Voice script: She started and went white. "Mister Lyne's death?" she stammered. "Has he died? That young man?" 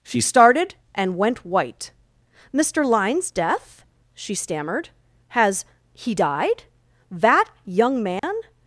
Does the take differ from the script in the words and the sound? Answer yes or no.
yes